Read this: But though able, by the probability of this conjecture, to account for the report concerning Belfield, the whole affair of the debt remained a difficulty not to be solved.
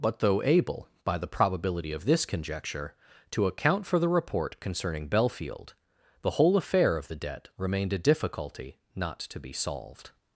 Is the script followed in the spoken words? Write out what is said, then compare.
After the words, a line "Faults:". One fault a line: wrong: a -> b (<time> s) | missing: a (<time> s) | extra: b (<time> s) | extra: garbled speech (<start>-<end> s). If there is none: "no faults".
But though able, by the probability of this conjecture, to account for the report concerning Belfield, the whole affair of the debt remained a difficulty not to be solved.
Faults:
no faults